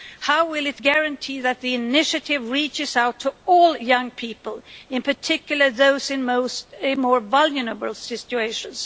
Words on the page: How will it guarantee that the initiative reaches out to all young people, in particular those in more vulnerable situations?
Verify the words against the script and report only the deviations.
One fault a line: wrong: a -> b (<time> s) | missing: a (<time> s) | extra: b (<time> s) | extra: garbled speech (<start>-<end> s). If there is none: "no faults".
no faults